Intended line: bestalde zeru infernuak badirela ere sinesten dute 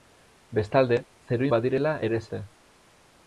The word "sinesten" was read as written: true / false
false